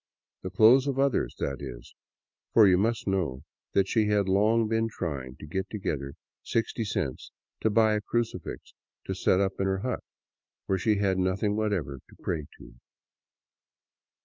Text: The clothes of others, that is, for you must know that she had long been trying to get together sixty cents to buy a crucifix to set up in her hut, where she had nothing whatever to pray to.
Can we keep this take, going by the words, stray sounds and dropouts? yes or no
yes